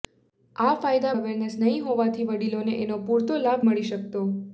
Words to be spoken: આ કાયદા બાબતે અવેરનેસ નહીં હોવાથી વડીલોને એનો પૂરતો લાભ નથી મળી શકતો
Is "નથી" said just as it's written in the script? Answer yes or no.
no